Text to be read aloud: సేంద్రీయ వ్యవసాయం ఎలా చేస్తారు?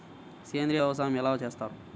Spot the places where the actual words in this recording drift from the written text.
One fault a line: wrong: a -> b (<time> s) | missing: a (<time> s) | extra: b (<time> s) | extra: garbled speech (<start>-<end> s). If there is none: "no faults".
no faults